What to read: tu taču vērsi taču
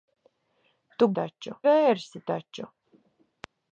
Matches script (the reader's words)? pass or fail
pass